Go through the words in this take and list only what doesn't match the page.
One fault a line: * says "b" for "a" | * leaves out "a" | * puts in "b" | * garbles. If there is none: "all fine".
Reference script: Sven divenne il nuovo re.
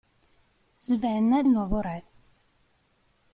* leaves out "divenne"